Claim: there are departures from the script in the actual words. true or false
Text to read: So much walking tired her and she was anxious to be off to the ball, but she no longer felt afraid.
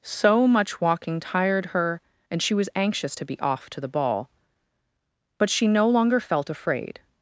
false